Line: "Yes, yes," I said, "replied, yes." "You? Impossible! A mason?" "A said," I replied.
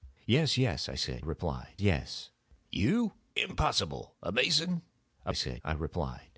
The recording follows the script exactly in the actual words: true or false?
true